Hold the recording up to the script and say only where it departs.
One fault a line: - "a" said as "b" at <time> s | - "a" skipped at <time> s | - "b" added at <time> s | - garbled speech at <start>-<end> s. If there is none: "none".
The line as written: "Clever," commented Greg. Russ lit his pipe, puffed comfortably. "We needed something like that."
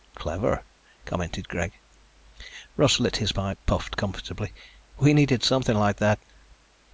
none